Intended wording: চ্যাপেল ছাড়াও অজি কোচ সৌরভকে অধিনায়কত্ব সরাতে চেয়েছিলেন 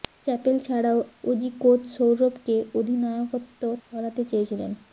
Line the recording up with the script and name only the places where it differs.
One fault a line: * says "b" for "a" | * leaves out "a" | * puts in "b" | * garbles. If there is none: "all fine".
all fine